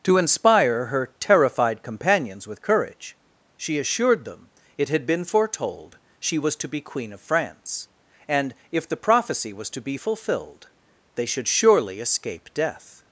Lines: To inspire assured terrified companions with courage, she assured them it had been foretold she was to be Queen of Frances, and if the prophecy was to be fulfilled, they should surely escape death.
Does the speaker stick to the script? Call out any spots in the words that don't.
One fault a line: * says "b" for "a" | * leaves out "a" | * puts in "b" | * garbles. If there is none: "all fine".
* says "her" for "assured"
* says "France" for "Frances"